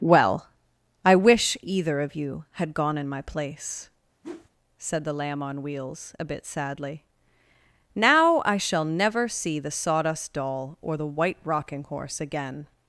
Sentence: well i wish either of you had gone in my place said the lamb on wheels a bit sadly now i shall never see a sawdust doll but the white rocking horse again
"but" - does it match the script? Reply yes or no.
no